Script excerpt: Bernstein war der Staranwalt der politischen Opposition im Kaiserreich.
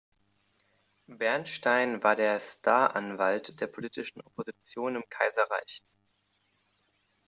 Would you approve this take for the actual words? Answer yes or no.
yes